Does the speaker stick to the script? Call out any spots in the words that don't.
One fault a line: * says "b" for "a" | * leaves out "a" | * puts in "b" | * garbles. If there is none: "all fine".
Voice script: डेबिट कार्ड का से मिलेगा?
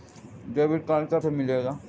all fine